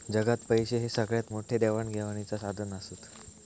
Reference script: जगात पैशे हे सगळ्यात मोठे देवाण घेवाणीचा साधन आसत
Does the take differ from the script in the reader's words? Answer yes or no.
no